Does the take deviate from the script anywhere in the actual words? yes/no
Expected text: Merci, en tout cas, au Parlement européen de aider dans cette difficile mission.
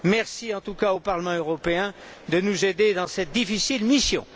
yes